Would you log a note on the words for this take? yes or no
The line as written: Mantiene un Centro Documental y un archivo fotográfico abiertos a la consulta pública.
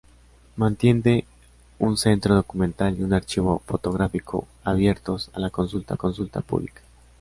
yes